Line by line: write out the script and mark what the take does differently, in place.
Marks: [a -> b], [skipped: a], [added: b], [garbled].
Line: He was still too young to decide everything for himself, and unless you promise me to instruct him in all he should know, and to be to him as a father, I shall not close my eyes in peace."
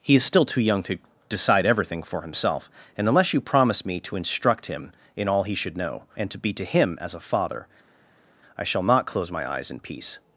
He [was -> is] still too young to decide everything for himself, and unless you promise me to instruct him in all he should know, and to be to him as a father, I shall not close my eyes in peace."